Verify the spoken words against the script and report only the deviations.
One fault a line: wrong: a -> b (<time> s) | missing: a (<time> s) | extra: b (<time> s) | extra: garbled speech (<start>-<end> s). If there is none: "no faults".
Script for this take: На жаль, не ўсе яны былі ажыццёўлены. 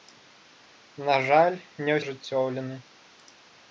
missing: ўсе яны былі (2.0 s)